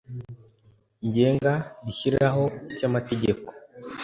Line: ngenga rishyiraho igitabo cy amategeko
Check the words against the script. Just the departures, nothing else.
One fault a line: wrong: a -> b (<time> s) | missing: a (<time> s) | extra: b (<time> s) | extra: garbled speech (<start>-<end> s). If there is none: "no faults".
missing: igitabo (2.4 s)